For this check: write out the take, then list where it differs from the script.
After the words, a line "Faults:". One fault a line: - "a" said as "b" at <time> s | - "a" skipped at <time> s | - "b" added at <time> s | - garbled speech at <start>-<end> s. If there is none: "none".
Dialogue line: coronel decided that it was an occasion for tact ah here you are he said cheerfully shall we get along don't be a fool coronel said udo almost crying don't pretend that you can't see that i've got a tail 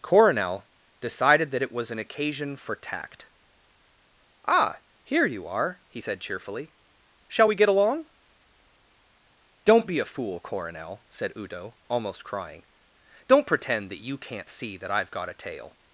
coronel decided that it was an occasion for tact ah here you are he said cheerfully shall we get along don't be a fool coronel said udo almost crying don't pretend that you can't see that i've got a tail
Faults:
none